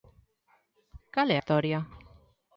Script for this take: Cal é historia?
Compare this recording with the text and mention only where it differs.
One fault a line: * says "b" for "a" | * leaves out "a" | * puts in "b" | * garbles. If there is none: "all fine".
all fine